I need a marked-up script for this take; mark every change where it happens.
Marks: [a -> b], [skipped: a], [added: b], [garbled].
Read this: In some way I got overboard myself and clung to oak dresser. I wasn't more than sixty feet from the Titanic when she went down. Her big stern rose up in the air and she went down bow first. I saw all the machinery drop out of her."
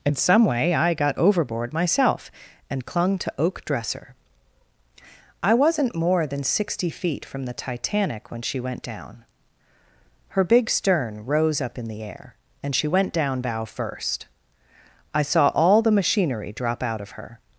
In some way I got overboard myself and clung to oak dresser. I wasn't more than sixty feet from the Titanic when she went down. Her big stern rose up in the air and she went down bow first. I saw all the machinery drop out of her."